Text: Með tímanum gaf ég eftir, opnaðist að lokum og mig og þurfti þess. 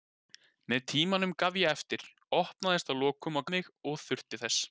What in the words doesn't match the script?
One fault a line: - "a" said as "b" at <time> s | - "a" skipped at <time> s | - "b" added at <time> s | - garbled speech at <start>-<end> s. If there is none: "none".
none